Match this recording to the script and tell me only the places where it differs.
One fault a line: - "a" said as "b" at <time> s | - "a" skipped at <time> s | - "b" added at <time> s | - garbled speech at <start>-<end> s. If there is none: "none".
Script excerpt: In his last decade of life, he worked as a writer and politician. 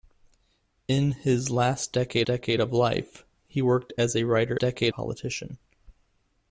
- "decade" added at 2.3 s
- "and" said as "decade" at 4.6 s